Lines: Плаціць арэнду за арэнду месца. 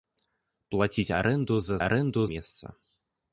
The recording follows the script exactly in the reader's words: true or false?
true